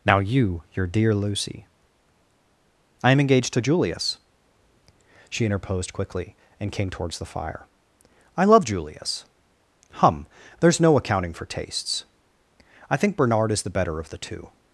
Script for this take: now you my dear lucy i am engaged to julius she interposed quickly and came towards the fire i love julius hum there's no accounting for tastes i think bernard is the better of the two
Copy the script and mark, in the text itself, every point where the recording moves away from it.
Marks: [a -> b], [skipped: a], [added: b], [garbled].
now you [my -> your] dear lucy i am engaged to julius she interposed quickly and came towards the fire i love julius hum there's no accounting for tastes i think bernard is the better of the two